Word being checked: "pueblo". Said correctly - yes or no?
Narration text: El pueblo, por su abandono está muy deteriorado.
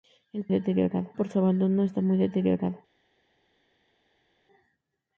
no